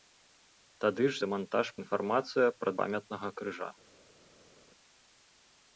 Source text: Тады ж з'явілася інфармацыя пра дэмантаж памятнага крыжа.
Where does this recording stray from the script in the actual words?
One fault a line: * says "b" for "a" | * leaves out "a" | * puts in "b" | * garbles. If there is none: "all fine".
* says "дэмантаж" for "з'явілася"
* leaves out "дэмантаж"